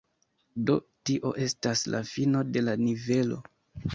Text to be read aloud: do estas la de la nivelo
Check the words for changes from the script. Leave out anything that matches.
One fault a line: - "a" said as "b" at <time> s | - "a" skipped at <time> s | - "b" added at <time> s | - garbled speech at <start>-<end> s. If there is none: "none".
- "tio" added at 1.1 s
- "fino" added at 2.1 s